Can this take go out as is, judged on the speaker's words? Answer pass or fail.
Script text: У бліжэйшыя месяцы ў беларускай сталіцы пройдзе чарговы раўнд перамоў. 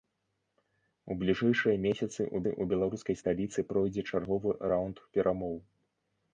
fail